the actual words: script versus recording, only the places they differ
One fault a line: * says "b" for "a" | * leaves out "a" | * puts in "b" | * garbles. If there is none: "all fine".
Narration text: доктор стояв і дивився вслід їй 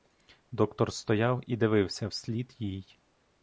all fine